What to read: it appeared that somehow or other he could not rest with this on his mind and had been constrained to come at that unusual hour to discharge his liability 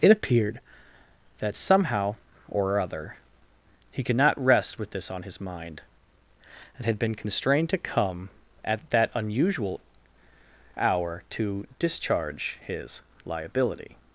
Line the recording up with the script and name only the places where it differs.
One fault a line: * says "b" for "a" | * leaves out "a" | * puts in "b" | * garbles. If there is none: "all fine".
all fine